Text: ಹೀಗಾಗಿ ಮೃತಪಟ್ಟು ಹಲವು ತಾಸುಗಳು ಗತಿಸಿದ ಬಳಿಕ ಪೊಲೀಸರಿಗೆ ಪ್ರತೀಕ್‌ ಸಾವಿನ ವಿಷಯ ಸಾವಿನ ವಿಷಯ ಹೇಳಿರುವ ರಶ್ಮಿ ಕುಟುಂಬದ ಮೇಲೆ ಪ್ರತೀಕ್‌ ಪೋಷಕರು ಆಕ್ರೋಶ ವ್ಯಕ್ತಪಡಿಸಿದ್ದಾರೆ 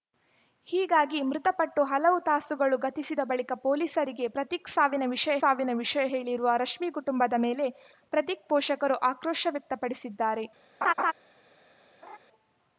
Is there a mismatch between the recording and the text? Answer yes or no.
no